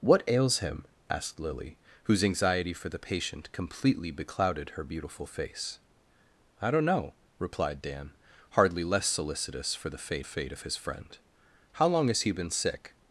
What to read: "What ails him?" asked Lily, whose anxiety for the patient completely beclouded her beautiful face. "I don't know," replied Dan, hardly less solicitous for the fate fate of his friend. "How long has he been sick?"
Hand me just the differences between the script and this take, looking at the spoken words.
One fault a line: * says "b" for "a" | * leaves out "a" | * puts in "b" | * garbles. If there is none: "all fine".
all fine